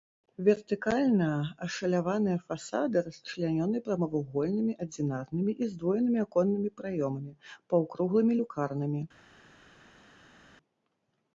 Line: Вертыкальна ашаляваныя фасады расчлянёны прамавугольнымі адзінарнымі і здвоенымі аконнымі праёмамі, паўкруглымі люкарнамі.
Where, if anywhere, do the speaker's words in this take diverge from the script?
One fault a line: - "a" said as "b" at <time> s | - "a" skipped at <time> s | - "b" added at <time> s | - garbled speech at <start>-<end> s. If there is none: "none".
none